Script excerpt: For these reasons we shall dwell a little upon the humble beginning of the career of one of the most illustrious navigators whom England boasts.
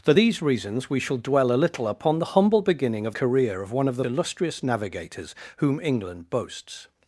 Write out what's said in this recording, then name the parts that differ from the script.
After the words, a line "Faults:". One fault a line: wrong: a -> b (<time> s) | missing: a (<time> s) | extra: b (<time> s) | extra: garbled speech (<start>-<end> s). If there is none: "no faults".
For these reasons we shall dwell a little upon the humble beginning of career of one of the illustrious navigators whom England boasts.
Faults:
missing: the (3.1 s)
missing: most (4.0 s)